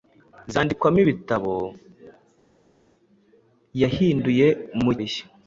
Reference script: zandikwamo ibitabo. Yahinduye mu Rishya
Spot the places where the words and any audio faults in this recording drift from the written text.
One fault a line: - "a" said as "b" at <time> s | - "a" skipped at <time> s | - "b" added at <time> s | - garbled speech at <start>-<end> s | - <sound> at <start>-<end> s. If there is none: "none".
none